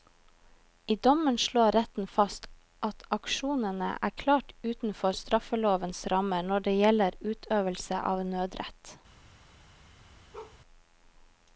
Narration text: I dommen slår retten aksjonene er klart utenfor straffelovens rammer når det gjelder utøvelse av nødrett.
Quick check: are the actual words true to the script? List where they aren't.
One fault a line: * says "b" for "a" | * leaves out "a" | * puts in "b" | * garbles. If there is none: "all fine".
* puts in "fast at"